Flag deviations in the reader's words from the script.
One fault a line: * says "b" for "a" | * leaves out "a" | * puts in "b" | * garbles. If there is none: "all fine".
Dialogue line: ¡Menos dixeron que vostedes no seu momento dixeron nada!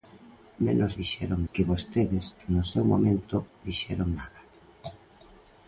all fine